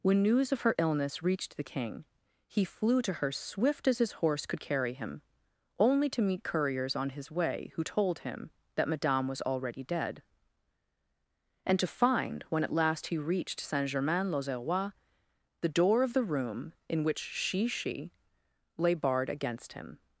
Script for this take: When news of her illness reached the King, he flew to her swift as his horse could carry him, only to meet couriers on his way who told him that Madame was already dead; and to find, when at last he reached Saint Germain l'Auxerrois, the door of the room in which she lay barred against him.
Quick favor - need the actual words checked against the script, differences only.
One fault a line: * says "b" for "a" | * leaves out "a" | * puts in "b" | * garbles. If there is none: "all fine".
* puts in "she"